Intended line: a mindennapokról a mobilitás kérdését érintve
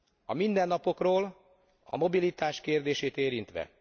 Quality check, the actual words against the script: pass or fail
pass